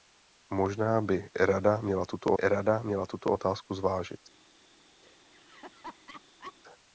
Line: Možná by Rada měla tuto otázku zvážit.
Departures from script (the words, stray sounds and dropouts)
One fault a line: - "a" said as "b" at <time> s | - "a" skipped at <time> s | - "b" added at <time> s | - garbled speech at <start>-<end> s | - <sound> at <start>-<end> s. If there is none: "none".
- "Rada měla tuto" added at 2.4 s
- laugh at 5.0-6.5 s